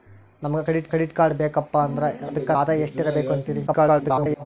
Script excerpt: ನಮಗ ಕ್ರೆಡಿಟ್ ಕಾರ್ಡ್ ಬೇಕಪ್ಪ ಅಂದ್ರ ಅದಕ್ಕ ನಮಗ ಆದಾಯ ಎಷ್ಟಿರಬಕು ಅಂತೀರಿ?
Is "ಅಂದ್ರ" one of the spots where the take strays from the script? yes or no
no